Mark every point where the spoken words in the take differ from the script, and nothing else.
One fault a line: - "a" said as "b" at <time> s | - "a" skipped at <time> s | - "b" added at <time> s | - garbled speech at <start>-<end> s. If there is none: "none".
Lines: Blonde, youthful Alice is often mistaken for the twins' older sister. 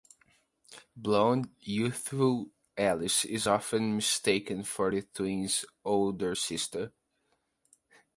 none